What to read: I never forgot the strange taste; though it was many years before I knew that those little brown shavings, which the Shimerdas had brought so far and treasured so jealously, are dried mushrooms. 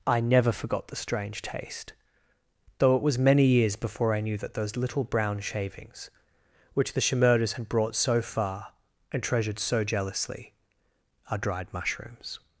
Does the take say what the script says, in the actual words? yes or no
yes